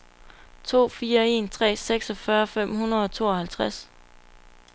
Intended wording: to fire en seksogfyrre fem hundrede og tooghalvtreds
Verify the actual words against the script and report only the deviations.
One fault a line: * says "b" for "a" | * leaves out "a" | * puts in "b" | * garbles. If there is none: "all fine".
* puts in "tre"